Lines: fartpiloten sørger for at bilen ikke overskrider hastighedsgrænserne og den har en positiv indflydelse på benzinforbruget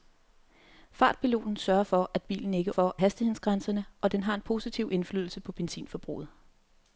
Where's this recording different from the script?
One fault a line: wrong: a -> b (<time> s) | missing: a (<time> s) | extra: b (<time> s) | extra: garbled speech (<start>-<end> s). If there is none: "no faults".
wrong: overskrider -> for (2.7 s)